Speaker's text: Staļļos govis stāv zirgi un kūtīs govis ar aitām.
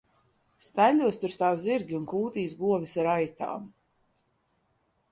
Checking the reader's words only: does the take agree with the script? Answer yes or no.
no